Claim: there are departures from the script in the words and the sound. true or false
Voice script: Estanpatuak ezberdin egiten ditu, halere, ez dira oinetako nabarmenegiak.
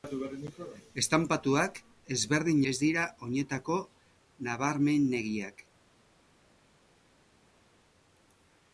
true